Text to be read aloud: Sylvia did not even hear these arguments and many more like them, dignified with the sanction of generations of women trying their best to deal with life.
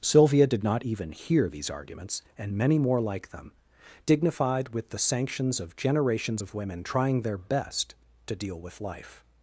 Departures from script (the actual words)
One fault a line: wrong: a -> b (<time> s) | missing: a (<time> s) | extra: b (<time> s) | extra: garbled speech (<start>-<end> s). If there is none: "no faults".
wrong: sanction -> sanctions (5.0 s)